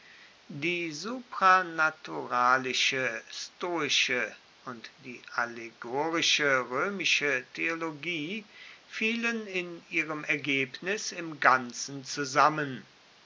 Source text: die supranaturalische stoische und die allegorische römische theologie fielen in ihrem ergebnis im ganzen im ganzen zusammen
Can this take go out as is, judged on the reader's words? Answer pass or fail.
fail